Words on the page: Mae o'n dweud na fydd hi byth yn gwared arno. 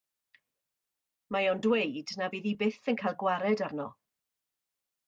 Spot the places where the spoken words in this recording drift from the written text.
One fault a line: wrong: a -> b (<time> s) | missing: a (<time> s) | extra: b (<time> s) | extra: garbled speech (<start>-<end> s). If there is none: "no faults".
extra: cael (3.0 s)